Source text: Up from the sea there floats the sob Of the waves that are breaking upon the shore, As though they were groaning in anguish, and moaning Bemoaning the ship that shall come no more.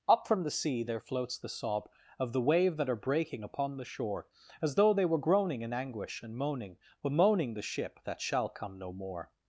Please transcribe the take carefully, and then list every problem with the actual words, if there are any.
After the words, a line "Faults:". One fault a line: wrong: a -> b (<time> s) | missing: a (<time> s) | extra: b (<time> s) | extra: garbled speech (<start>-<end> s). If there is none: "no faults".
Up from the sea there floats the sob Of the wave that are breaking upon the shore, As though they were groaning in anguish, and moaning Bemoaning the ship that shall come no more.
Faults:
wrong: waves -> wave (2.4 s)